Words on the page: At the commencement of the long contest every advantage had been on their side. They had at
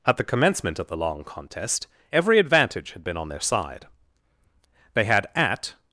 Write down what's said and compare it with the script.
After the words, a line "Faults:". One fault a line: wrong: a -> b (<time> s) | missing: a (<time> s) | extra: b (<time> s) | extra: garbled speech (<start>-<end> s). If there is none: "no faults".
At the commencement of the long contest every advantage had been on their side. They had at
Faults:
no faults